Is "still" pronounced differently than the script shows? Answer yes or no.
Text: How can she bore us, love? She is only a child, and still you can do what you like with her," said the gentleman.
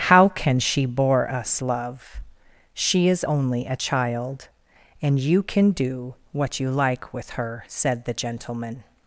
yes